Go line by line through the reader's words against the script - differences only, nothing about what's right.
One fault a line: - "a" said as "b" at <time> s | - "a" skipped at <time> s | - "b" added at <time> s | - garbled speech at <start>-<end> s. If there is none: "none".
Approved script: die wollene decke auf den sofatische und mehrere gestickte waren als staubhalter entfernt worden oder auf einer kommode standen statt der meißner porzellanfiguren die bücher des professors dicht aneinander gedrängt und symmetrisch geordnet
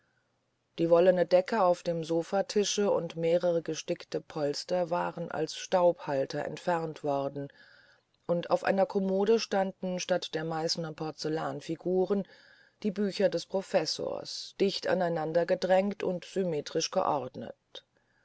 - "den" said as "dem" at 1.8 s
- "polster" added at 4.2 s
- "oder" said as "und" at 8.2 s